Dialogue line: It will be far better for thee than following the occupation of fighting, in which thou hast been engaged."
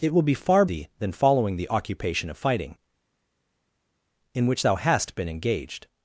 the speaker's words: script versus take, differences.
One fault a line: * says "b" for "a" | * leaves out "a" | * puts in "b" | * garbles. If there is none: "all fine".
* leaves out "better for"